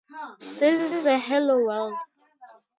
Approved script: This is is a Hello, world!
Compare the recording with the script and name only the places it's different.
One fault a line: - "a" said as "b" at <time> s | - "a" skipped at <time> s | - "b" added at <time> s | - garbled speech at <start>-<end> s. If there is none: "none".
none